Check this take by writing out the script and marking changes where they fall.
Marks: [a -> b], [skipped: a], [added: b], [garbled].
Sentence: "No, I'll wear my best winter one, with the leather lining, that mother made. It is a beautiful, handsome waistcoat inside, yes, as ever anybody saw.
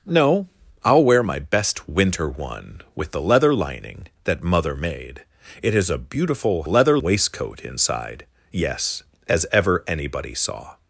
"No, I'll wear my best winter one, with the leather lining, that mother made. It is a beautiful, [handsome -> leather] waistcoat inside, yes, as ever anybody saw.